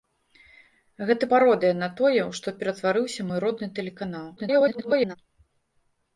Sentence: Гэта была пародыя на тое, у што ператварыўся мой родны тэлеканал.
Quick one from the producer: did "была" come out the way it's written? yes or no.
no